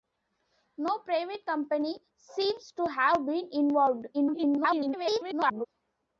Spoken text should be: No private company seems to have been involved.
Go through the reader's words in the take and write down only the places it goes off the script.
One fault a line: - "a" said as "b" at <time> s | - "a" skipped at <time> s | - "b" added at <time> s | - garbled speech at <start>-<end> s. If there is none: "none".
- garbled speech at 4.1-5.7 s